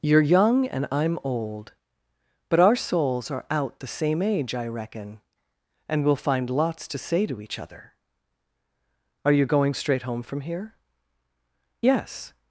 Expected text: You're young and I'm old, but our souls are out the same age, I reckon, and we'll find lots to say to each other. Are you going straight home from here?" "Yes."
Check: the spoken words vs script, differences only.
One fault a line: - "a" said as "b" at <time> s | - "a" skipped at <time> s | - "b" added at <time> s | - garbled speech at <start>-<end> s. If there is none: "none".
none